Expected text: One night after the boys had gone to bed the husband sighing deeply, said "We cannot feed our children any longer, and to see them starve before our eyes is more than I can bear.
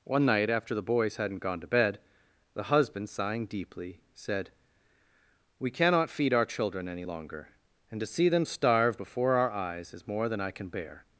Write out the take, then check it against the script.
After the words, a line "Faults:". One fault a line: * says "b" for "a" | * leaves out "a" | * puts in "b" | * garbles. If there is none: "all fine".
One night after the boys hadn't gone to bed the husband sighing deeply, said "We cannot feed our children any longer, and to see them starve before our eyes is more than I can bear.
Faults:
* says "hadn't" for "had"